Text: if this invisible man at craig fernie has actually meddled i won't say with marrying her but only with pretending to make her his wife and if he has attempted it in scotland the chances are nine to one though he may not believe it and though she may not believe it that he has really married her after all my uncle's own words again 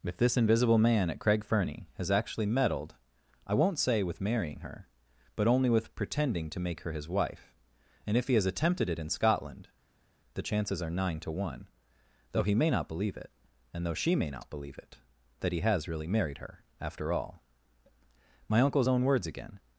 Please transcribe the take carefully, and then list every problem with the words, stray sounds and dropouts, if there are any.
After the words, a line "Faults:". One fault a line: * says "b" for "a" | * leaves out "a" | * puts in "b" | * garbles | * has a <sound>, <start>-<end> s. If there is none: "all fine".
if this invisible man at craig fernie has actually meddled i won't say with marrying her but only with pretending to make her his wife and if he has attempted it in scotland the chances are nine to one though he may not believe it and though she may not believe it that he has really married her after all my uncle's own words again
Faults:
all fine